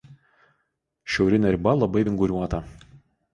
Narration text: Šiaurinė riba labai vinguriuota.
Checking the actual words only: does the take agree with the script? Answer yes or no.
yes